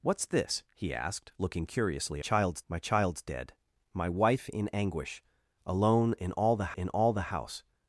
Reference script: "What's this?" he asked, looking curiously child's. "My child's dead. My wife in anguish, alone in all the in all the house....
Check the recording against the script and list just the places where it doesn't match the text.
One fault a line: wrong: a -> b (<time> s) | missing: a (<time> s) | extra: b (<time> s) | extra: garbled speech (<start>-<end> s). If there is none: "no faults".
no faults